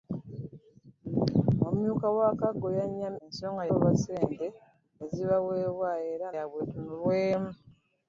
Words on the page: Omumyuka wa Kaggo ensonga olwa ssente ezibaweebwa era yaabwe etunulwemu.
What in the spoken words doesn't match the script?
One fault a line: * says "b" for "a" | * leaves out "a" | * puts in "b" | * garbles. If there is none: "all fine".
all fine